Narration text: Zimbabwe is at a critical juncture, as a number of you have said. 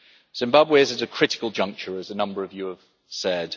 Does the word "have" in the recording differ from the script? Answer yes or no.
no